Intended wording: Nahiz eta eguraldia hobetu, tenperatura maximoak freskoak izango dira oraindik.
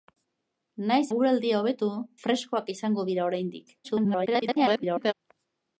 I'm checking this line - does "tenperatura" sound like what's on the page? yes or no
no